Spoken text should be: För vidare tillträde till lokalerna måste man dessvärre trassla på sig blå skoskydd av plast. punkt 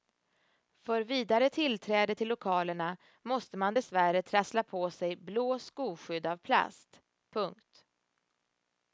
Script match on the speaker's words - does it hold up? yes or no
yes